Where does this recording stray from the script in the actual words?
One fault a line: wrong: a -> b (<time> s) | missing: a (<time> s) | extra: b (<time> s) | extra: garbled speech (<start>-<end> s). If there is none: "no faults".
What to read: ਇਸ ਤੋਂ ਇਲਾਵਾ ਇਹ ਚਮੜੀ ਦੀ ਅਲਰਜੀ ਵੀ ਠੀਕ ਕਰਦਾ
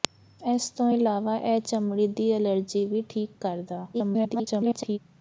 extra: garbled speech (3.9-5.0 s)